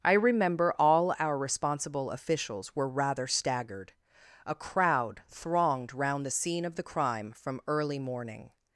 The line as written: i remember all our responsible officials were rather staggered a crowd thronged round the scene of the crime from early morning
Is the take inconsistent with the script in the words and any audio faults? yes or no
no